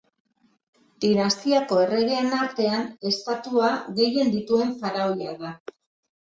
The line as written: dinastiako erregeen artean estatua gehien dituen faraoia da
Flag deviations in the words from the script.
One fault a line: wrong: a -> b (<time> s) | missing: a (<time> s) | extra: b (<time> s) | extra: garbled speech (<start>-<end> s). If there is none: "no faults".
no faults